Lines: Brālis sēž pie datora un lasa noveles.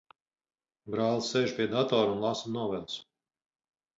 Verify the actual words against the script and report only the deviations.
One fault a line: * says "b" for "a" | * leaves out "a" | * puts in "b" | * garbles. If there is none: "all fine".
all fine